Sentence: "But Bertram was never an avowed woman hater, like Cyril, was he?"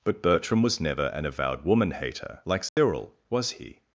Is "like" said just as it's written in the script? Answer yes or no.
yes